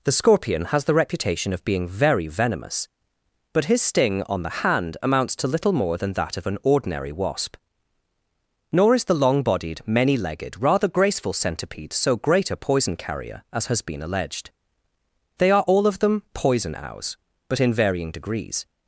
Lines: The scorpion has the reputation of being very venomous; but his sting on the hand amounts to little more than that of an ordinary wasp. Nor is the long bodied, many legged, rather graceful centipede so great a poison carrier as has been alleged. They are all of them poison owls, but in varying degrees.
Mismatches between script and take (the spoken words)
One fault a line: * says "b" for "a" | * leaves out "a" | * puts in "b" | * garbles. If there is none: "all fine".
all fine